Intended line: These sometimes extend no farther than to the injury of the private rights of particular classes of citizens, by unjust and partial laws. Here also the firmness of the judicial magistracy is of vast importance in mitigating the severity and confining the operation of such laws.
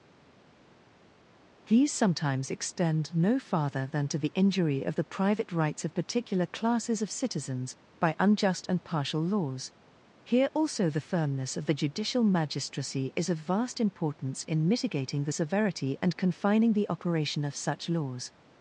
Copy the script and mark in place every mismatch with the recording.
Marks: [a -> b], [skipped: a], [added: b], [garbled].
These sometimes extend no farther than to the injury of the private rights of particular classes of citizens, by unjust and partial laws. Here also the firmness of the judicial magistracy is of vast importance in mitigating the severity and confining the operation of such laws.